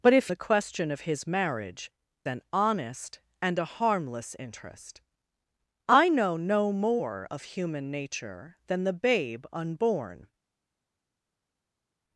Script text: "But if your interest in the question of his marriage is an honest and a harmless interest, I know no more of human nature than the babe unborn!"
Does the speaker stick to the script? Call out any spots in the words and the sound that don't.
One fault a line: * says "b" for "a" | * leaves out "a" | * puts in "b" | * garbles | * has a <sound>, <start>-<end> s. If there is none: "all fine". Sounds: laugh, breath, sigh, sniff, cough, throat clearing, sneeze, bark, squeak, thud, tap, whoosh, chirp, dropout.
* leaves out "your interest in"
* leaves out "is"